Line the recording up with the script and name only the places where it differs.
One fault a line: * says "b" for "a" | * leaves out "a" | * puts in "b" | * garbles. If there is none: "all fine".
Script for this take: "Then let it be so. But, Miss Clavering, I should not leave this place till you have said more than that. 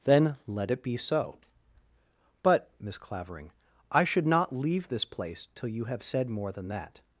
all fine